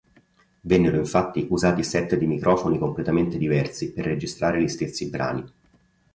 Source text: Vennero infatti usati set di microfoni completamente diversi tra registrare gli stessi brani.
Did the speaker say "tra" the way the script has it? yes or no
no